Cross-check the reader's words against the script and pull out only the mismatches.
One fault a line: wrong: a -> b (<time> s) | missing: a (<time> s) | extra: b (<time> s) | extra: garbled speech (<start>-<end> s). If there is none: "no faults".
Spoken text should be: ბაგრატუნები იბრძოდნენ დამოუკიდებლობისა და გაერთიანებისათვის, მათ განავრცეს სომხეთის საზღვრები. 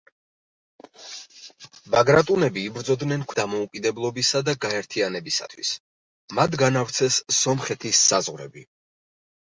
no faults